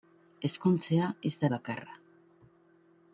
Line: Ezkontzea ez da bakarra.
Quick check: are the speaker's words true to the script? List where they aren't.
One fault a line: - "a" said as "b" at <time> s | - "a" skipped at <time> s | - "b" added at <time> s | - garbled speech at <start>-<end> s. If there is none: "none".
none